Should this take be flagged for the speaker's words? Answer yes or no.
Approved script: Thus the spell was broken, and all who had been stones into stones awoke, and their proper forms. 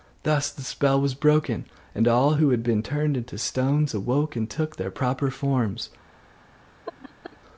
yes